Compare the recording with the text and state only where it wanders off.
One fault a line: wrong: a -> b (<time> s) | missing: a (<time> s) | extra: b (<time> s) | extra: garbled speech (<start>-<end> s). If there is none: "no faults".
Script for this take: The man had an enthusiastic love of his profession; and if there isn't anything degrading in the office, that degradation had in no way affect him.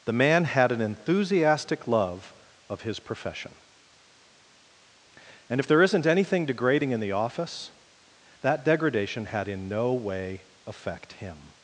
no faults